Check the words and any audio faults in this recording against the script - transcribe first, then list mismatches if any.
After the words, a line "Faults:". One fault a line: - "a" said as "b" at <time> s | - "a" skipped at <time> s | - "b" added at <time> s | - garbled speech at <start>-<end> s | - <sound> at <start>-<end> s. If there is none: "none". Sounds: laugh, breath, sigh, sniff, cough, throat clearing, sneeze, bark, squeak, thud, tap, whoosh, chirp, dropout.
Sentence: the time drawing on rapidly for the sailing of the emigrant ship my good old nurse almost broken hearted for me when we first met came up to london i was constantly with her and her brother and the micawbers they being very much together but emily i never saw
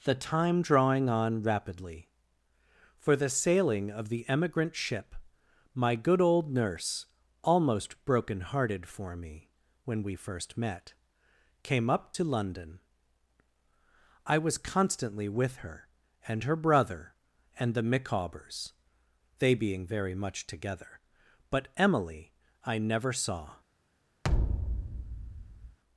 the time drawing on rapidly for the sailing of the emigrant ship my good old nurse almost broken hearted for me when we first met came up to london i was constantly with her and her brother and the micawbers they being very much together but emily i never saw
Faults:
- thud at 24.2-25.8 s